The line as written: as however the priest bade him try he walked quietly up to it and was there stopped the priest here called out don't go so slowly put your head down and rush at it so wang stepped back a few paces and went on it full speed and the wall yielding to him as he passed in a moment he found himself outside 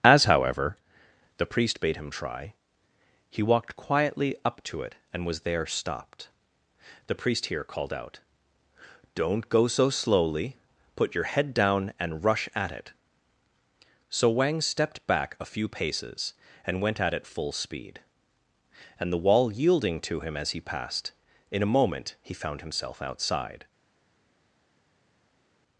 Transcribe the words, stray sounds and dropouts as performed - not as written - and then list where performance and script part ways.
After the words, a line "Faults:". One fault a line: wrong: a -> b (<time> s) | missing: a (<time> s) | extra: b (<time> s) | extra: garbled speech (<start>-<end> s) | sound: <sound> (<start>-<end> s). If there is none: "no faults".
as however the priest bade him try he walked quietly up to it and was there stopped the priest here called out don't go so slowly put your head down and rush at it so wang stepped back a few paces and went at it full speed and the wall yielding to him as he passed in a moment he found himself outside
Faults:
wrong: on -> at (17.0 s)